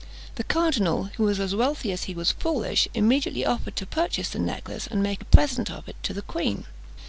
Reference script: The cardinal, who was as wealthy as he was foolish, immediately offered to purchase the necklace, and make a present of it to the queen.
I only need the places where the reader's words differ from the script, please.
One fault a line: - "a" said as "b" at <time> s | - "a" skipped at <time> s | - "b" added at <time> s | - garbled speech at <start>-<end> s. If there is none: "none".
none